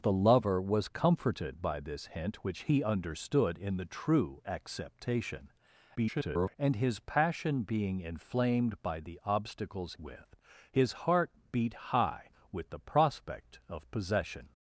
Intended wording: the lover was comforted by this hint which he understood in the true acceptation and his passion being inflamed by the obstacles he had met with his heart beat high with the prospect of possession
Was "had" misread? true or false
true